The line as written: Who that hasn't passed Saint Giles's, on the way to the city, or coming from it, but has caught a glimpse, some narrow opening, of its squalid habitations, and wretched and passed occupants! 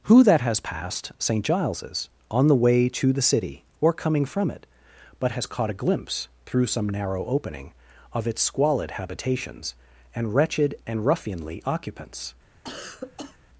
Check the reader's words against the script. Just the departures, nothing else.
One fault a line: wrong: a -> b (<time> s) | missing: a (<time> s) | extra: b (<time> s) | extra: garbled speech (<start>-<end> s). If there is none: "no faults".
wrong: hasn't -> has (0.4 s)
extra: through (6.5 s)
wrong: passed -> ruffianly (11.0 s)